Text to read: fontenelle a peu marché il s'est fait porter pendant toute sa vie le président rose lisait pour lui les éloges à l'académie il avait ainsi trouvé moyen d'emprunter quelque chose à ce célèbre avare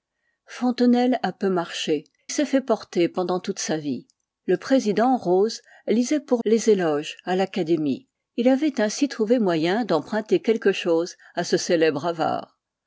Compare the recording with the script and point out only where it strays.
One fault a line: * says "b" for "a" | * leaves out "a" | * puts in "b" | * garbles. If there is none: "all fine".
* leaves out "il"
* leaves out "lui"